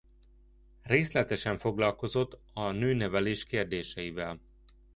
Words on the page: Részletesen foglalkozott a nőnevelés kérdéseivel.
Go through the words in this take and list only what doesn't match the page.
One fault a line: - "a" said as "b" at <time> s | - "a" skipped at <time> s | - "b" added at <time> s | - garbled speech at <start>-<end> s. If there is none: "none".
none